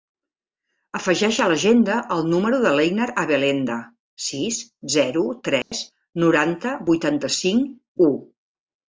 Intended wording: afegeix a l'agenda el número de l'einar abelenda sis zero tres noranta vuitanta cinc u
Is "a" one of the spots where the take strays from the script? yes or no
no